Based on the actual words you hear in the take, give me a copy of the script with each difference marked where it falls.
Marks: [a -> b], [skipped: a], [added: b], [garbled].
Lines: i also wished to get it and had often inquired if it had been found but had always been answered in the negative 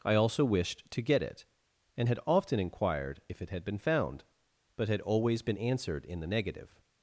i also wished to get it and had often inquired if it had been found but had always been answered in the negative